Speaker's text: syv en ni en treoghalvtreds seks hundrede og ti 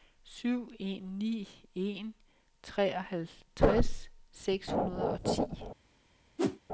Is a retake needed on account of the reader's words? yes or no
no